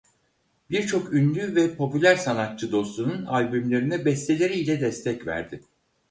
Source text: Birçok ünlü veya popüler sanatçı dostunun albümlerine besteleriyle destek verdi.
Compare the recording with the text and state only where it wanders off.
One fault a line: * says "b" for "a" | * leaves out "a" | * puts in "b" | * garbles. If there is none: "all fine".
* says "ve" for "veya"